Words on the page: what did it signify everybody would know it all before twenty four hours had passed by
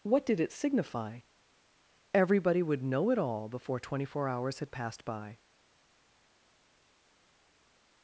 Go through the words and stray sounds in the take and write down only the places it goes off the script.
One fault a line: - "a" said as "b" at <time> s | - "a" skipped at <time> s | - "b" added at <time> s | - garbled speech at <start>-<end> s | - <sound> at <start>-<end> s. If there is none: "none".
none